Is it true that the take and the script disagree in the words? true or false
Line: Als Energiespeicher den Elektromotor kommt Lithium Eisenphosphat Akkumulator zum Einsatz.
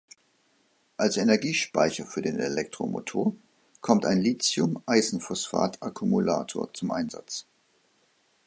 true